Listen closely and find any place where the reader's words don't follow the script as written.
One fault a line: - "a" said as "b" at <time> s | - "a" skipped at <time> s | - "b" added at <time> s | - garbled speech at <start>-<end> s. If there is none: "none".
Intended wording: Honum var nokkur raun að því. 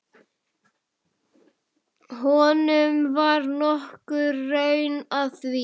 none